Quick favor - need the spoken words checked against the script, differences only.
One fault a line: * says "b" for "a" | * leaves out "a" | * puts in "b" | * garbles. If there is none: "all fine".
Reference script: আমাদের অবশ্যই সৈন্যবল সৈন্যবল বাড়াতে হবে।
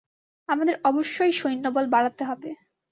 * leaves out "সৈন্যবল"